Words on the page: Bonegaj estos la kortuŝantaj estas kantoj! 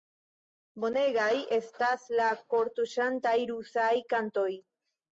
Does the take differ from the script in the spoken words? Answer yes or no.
yes